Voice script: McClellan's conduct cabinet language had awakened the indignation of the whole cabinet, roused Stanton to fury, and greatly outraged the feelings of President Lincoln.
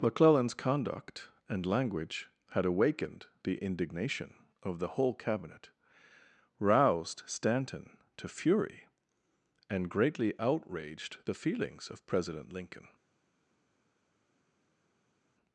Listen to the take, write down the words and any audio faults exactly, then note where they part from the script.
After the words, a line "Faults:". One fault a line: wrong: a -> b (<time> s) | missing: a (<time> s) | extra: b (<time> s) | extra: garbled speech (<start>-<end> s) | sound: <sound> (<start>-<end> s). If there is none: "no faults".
McClellan's conduct and language had awakened the indignation of the whole cabinet, roused Stanton to fury, and greatly outraged the feelings of President Lincoln.
Faults:
wrong: cabinet -> and (1.5 s)